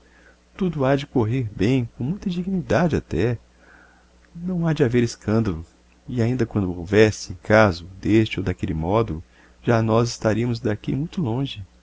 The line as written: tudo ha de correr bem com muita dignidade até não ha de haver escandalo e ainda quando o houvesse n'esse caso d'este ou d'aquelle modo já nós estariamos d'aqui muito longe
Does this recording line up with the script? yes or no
no